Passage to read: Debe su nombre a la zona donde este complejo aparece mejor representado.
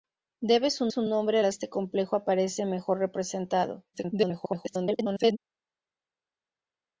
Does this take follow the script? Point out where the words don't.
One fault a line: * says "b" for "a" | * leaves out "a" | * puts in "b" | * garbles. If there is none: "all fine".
* puts in "su"
* leaves out "zona donde"
* garbles